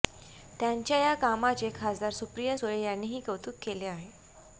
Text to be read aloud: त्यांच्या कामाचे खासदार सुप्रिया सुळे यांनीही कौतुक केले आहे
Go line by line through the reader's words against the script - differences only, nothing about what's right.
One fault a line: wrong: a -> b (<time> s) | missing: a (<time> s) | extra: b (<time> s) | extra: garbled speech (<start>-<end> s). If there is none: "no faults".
extra: या (1.0 s)